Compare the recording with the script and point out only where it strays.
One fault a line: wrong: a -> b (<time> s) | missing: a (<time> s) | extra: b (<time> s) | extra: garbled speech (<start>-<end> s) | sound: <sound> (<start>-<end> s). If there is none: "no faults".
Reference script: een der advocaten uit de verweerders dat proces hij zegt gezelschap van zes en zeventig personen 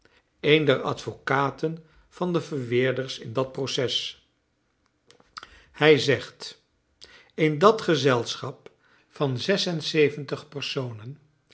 wrong: uit -> van (2.1 s)
extra: in (3.2 s)
extra: in dat (7.3 s)